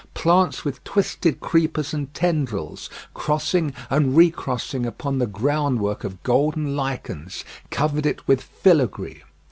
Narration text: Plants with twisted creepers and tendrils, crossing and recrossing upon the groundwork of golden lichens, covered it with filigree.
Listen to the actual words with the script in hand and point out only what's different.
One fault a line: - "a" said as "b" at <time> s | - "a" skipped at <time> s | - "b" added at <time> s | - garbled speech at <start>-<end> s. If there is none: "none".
none